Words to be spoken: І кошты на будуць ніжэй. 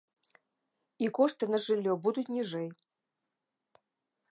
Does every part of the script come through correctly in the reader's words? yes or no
no